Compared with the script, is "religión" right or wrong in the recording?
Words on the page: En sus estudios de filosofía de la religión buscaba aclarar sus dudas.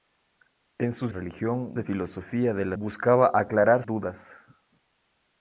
wrong